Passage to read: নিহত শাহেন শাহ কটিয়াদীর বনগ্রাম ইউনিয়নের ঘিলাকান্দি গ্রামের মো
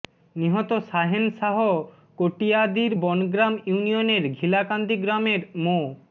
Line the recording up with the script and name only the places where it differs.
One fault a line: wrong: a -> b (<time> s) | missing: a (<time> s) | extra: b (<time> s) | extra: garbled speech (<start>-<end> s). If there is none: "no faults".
no faults